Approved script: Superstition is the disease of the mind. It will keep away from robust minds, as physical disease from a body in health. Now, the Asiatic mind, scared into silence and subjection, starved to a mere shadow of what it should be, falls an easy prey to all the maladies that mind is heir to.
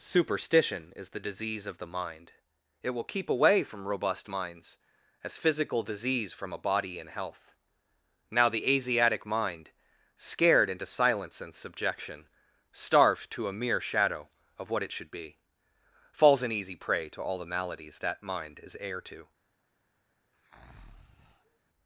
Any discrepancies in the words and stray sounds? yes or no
yes